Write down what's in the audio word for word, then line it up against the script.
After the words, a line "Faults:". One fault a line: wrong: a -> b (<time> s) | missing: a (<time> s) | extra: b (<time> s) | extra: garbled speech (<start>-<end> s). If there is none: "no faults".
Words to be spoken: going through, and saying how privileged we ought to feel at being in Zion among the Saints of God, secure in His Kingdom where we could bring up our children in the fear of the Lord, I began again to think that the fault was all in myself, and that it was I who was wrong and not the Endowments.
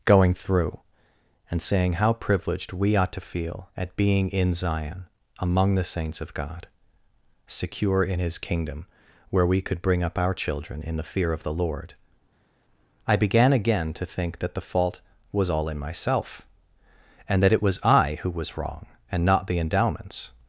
going through, and saying how privileged we ought to feel at being in Zion among the Saints of God, secure in His Kingdom where we could bring up our children in the fear of the Lord, I began again to think that the fault was all in myself, and that it was I who was wrong and not the Endowments.
Faults:
no faults